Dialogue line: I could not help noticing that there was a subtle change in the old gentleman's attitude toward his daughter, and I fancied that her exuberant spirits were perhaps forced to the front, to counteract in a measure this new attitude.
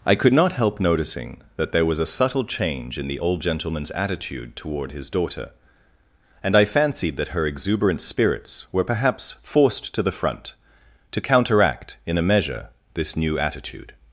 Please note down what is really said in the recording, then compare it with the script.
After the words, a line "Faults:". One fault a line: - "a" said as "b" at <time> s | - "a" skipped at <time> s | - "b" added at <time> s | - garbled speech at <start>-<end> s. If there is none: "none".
I could not help noticing that there was a subtle change in the old gentleman's attitude toward his daughter, and I fancied that her exuberant spirits were perhaps forced to the front, to counteract in a measure this new attitude.
Faults:
none